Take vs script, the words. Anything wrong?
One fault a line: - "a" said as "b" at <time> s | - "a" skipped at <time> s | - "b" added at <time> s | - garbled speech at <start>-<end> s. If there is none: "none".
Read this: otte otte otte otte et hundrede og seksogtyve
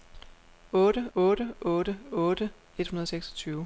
none